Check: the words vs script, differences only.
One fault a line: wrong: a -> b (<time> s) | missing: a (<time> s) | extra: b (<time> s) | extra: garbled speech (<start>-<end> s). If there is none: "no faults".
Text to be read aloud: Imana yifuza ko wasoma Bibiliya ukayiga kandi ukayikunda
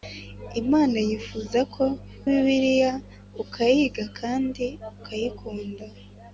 missing: wasoma (1.9 s)